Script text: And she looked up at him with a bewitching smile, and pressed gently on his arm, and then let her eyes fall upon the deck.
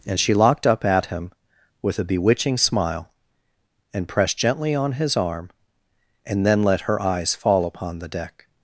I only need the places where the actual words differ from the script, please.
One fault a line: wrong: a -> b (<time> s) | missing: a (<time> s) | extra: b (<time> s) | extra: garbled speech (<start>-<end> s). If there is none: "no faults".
wrong: looked -> locked (0.3 s)